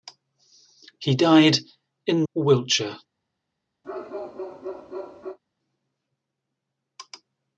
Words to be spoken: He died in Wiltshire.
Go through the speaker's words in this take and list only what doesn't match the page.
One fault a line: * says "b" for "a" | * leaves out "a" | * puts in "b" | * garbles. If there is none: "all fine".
all fine